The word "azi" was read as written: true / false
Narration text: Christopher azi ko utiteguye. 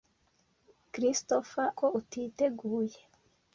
false